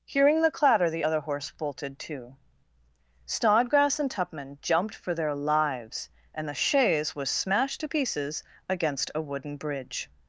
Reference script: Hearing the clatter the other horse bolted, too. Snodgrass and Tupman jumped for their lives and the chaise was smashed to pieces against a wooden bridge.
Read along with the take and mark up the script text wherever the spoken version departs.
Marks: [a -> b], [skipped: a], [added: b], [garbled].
Hearing the clatter the other horse bolted, too. Snodgrass and Tupman jumped for their lives and the chaise was smashed to pieces against a wooden bridge.